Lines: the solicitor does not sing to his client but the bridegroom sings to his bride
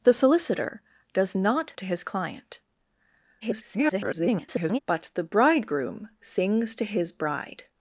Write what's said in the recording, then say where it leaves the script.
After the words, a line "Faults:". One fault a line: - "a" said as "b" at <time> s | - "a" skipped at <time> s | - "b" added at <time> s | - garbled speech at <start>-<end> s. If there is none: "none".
the solicitor does not to his client [garbled] but the bridegroom sings to his bride
Faults:
- "sing" skipped at 1.7 s
- garbled speech at 3.4-4.8 s